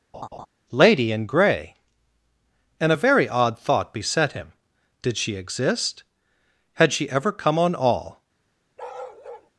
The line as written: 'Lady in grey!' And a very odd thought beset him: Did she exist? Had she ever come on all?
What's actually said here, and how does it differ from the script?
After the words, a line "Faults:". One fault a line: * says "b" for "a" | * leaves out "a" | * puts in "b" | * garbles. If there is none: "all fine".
'Lady in grey!' And a very odd thought beset him: Did she exist? Had she ever come on all?
Faults:
all fine